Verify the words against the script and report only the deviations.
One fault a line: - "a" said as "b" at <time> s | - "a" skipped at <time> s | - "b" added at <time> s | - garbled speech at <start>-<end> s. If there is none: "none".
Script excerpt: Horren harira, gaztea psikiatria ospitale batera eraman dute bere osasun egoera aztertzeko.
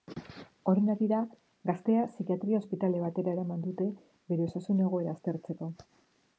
none